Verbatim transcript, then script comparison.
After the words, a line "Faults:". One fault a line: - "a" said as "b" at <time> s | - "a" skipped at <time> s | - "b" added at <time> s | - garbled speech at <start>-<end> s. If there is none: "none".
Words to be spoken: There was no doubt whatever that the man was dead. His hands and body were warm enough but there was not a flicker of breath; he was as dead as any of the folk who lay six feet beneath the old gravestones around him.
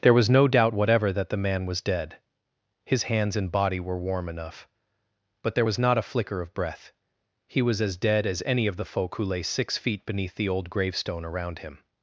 There was no doubt whatever that the man was dead. His hands and body were warm enough but there was not a flicker of breath; he was as dead as any of the folk who lay six feet beneath the old gravestone around him.
Faults:
- "gravestones" said as "gravestone" at 10.7 s